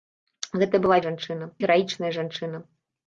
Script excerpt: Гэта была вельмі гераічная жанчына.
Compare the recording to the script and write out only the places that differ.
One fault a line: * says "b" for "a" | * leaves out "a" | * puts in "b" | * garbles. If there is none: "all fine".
* says "жанчына" for "вельмі"